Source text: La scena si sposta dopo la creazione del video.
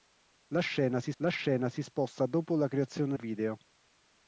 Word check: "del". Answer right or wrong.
wrong